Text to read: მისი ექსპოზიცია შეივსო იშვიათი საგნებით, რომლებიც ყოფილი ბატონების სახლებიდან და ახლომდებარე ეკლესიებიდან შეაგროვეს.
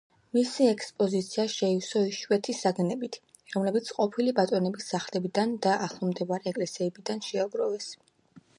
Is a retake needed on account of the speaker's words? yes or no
no